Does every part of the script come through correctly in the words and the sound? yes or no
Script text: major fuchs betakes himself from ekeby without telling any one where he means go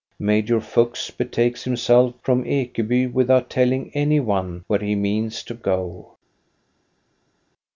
no